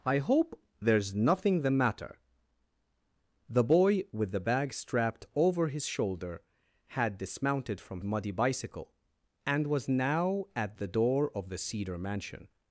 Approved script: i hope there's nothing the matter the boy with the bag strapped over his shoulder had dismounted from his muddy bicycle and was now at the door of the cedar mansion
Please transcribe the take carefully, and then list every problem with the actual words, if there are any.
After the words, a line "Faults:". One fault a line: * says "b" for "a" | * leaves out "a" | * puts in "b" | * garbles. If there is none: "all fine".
i hope there's nothing the matter the boy with the bag strapped over his shoulder had dismounted from muddy bicycle and was now at the door of the cedar mansion
Faults:
* leaves out "his"